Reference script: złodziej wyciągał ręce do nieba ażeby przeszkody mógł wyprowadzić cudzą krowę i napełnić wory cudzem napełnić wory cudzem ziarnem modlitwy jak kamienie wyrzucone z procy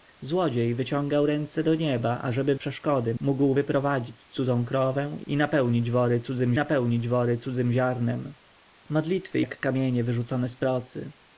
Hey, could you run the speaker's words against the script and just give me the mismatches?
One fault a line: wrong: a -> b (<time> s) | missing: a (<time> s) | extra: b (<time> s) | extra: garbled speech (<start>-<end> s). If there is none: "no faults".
no faults